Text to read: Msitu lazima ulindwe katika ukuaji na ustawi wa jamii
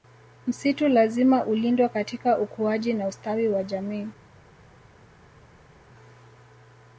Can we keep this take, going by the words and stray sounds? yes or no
yes